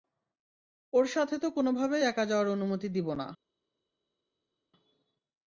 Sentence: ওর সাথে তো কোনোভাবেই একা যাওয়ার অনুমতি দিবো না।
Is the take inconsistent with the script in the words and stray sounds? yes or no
no